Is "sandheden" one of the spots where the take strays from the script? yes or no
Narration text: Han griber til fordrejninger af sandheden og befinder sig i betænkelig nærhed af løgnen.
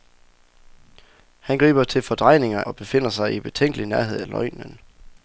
yes